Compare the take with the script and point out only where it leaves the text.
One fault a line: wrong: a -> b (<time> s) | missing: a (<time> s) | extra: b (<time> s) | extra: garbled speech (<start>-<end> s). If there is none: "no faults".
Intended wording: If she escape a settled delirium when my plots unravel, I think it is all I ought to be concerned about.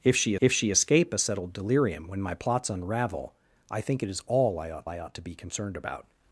extra: if she (0.4 s)
extra: I ought (4.9 s)